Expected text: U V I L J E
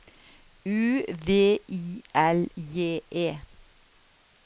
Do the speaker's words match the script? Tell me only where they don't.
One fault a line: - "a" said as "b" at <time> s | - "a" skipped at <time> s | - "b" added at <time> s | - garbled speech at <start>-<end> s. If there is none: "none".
none